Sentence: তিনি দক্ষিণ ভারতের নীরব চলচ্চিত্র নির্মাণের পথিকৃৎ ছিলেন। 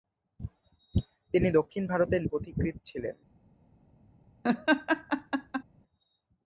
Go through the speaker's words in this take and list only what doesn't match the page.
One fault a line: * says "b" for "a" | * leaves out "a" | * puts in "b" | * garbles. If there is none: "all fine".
* leaves out "নীরব চলচ্চিত্র নির্মাণের"